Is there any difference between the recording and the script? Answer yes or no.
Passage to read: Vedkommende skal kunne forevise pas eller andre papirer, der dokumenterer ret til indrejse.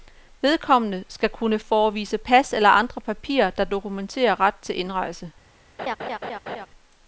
no